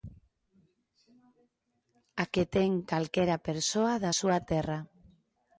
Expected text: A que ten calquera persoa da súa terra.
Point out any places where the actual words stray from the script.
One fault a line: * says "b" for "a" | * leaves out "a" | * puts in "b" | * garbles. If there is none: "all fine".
all fine